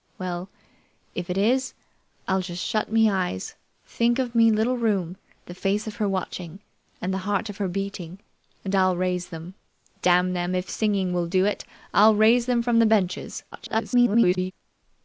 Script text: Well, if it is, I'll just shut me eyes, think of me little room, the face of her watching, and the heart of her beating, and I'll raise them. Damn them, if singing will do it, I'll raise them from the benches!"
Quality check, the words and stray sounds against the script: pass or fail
fail